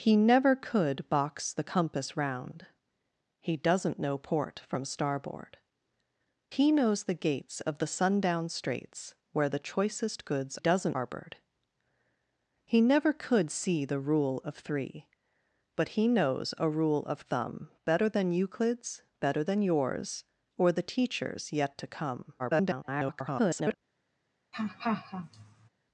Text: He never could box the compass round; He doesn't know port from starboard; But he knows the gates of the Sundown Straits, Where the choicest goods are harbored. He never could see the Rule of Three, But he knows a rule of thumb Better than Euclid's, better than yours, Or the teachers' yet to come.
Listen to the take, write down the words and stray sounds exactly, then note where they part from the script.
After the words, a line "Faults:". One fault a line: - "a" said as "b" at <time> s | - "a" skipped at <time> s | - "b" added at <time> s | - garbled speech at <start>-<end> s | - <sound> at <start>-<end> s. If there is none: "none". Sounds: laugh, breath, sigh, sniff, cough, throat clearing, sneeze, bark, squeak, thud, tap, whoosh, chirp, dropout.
He never could box the compass round; He doesn't know port from starboard; He knows the gates of the Sundown Straits, Where the choicest goods doesn't harbored. He never could see the Rule of Three, But he knows a rule of thumb Better than Euclid's, better than yours, Or the teachers' yet to come. [garbled]
Faults:
- "But" skipped at 5.6 s
- "are" said as "doesn't" at 10.6 s
- garbled speech at 22.4-23.7 s
- laugh at 24.5-25.7 s